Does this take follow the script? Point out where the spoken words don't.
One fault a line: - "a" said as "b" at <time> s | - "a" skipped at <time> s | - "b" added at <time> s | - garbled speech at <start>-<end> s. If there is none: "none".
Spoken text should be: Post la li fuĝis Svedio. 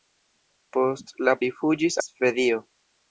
none